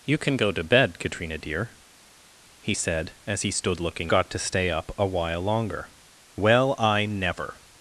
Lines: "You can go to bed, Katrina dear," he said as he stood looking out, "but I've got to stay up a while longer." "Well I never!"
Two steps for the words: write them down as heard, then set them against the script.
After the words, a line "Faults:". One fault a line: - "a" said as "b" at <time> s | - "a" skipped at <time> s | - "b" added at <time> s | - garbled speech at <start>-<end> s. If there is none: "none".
"You can go to bed, Katrina dear," he said as he stood looking got to stay up a while longer." "Well I never!"
Faults:
- "out but I've" skipped at 4.1 s